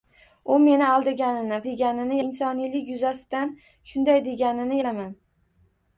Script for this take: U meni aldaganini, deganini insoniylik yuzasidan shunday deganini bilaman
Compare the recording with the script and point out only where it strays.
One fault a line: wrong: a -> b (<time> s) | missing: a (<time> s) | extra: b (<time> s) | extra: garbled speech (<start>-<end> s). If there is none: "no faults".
no faults